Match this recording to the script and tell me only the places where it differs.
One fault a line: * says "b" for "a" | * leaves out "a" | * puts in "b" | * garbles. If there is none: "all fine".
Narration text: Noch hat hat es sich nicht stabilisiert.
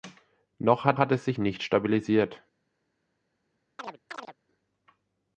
all fine